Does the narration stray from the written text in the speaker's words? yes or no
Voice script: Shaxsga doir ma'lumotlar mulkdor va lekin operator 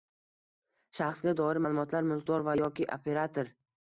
yes